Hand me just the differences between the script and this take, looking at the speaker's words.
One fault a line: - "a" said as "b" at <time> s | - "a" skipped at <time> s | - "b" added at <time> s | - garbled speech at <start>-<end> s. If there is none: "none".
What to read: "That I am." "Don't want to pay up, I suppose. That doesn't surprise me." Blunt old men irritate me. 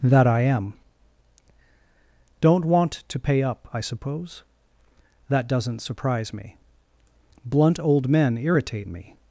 none